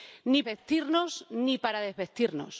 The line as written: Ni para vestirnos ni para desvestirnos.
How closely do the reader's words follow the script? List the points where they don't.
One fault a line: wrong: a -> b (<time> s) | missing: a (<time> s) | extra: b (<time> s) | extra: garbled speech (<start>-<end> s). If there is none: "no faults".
missing: para (0.4 s)